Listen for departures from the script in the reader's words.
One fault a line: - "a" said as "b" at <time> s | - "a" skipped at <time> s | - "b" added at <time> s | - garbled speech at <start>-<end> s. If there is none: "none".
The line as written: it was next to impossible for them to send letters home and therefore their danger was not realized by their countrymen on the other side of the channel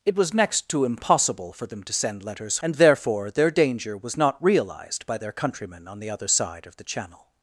- "home" skipped at 2.6 s